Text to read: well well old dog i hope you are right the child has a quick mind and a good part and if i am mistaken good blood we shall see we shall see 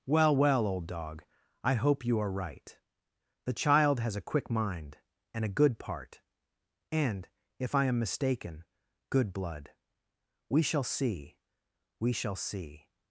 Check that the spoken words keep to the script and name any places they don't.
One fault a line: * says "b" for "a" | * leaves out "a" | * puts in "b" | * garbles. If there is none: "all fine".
all fine